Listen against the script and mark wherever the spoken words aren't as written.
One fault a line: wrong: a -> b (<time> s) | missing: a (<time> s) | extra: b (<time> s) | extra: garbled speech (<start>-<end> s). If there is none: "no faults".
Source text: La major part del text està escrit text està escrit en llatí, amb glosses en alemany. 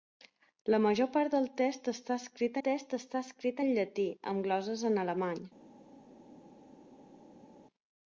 no faults